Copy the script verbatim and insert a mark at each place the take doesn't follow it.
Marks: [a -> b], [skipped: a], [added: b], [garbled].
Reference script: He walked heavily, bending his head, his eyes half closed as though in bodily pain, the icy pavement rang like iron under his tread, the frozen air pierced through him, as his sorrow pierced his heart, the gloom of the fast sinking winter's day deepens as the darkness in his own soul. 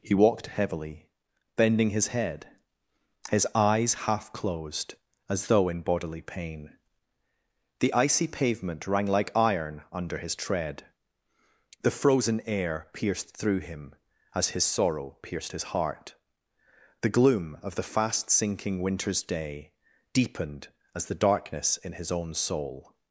He walked heavily, bending his head, his eyes half closed as though in bodily pain, the icy pavement rang like iron under his tread, the frozen air pierced through him, as his sorrow pierced his heart, the gloom of the fast sinking winter's day [deepens -> deepened] as the darkness in his own soul.